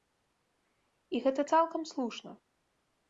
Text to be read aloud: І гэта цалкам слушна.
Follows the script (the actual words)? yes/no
yes